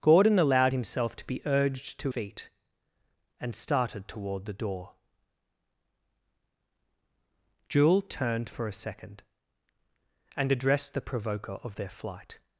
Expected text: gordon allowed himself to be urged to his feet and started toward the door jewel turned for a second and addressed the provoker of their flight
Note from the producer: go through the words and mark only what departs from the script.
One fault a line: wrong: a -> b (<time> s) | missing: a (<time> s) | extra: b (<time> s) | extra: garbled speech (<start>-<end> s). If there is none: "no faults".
missing: his (2.1 s)